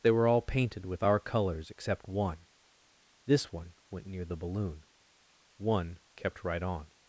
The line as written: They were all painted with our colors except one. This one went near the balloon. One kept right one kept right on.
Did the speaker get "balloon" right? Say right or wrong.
right